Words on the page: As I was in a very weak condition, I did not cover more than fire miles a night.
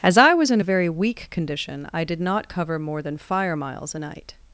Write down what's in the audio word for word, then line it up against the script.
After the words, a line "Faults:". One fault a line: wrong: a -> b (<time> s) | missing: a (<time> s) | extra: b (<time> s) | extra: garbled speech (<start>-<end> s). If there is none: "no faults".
As I was in a very weak condition, I did not cover more than fire miles a night.
Faults:
no faults